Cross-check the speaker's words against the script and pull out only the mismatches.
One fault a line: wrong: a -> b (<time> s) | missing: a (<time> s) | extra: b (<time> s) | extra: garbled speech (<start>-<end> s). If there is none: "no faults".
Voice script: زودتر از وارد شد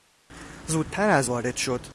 no faults